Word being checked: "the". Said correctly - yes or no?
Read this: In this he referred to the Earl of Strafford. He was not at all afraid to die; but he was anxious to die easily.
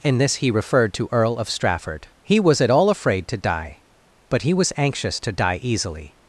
no